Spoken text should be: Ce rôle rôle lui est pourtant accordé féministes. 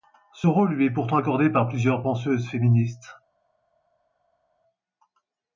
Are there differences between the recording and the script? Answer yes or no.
yes